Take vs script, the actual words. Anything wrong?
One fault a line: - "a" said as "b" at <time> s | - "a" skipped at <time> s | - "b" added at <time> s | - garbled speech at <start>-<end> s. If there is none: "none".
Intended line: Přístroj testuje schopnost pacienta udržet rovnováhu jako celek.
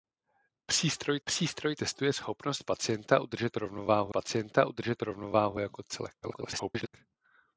- "přístroj" added at 1.2 s
- "pacienta udržet rovnováhu" added at 4.1 s
- garbled speech at 6.2-6.9 s